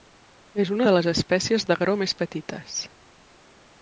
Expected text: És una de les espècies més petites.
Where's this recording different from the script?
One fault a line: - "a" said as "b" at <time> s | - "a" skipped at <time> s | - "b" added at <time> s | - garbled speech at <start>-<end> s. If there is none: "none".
- "d'agró" added at 1.7 s